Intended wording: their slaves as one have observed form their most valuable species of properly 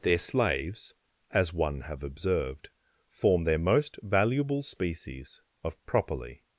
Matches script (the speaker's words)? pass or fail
pass